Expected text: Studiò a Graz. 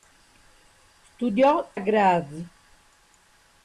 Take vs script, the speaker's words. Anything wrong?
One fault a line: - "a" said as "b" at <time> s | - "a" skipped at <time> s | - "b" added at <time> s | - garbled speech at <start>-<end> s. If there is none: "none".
none